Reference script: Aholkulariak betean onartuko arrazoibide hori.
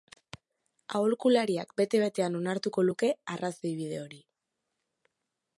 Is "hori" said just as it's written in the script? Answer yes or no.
yes